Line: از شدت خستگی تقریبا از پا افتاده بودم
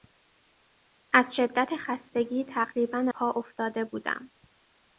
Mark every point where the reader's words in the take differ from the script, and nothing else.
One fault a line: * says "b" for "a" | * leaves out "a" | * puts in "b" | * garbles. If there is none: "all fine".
* leaves out "از"